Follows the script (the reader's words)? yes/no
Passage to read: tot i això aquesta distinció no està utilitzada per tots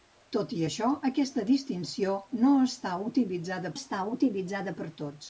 no